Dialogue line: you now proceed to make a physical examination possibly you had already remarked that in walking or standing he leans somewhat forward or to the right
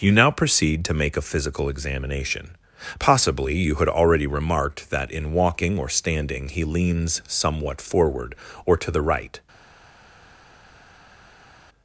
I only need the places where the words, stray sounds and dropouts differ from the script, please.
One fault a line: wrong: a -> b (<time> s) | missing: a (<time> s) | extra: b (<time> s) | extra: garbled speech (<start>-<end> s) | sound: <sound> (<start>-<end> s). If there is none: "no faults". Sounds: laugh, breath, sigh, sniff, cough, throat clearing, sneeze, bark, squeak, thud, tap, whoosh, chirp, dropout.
no faults